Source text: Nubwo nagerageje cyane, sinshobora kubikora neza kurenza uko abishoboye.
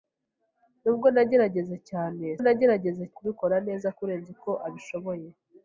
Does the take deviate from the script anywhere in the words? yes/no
yes